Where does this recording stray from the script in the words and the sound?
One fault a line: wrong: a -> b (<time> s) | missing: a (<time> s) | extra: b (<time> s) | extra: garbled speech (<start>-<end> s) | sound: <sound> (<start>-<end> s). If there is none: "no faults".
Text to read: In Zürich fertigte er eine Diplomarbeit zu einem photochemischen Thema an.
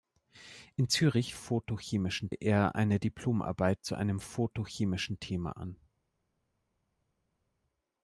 wrong: fertigte -> photochemischen (1.3 s)